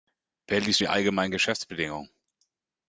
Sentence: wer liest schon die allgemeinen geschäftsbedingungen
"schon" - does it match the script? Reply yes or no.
no